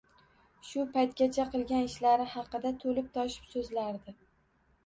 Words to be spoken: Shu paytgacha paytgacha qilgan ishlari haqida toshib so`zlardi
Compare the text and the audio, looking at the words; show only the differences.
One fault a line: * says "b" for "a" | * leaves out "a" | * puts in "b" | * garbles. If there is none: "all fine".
* leaves out "paytgacha"
* puts in "to`lib"